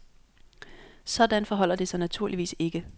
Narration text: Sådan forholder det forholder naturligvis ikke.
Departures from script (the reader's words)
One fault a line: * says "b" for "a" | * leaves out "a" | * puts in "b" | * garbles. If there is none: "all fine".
* says "sig" for "forholder"